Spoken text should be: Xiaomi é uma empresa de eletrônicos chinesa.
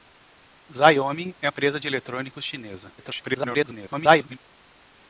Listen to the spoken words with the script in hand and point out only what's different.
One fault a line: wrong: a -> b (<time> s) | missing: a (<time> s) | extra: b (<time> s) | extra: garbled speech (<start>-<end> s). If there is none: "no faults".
missing: uma (1.5 s)
extra: garbled speech (3.0-4.4 s)